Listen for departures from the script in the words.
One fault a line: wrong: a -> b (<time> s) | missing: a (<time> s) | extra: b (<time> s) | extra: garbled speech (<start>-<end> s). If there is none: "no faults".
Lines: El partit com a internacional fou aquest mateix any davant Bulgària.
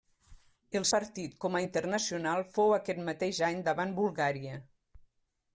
no faults